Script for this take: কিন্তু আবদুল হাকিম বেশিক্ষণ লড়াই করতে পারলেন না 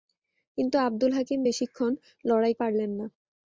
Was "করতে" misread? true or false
true